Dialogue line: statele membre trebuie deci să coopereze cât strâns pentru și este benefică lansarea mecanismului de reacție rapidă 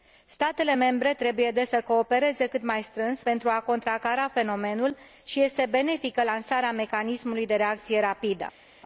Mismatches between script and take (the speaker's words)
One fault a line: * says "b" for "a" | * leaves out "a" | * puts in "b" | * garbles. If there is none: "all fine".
* puts in "mai"
* puts in "a contracara fenomenul"